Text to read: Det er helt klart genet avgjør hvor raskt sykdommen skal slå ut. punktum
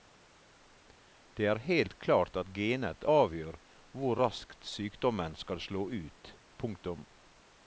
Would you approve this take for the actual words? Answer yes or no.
no